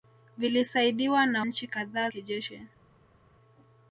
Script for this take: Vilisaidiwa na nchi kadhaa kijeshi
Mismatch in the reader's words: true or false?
false